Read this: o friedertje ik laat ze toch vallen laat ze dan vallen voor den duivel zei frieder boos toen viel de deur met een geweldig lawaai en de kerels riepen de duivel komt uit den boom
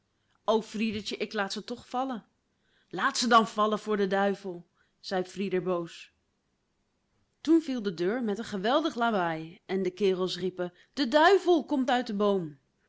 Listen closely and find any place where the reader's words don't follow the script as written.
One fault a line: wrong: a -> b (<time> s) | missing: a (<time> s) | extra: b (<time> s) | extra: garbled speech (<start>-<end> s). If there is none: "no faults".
no faults